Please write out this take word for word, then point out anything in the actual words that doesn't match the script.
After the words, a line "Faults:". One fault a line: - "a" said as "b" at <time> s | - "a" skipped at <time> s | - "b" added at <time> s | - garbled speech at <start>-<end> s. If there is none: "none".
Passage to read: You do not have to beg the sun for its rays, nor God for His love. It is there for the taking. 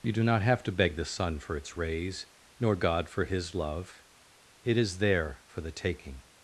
You do not have to beg the sun for its rays, nor God for His love. It is there for the taking.
Faults:
none